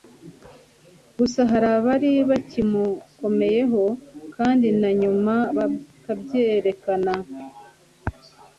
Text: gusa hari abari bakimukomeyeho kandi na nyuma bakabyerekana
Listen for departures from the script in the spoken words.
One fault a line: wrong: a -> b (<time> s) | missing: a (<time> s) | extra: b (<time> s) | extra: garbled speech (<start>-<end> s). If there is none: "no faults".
no faults